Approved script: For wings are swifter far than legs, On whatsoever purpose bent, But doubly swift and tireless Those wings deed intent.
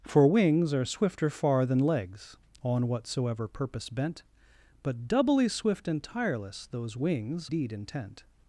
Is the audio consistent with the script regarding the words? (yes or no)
yes